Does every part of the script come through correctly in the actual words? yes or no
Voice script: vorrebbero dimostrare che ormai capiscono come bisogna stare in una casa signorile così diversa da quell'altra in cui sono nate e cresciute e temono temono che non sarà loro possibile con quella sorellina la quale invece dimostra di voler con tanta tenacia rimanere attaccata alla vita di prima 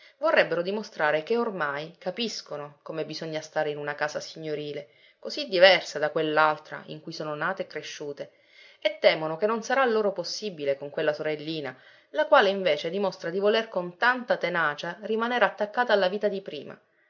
no